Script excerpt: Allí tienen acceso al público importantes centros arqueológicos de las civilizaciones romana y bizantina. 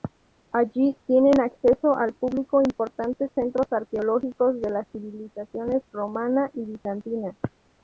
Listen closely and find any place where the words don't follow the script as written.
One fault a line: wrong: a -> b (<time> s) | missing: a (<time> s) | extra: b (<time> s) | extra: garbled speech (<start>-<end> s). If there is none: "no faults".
no faults